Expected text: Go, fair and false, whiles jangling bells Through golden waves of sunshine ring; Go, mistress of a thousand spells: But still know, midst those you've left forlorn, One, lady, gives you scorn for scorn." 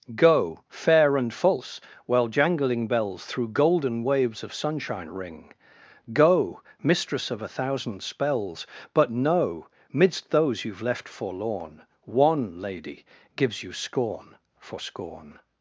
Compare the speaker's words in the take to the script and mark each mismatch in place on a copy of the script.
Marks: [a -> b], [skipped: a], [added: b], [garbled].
Go, fair and false, [whiles -> while] jangling bells Through golden waves of sunshine ring; Go, mistress of a thousand spells: But [skipped: still] know, midst those you've left forlorn, One, lady, gives you scorn for scorn."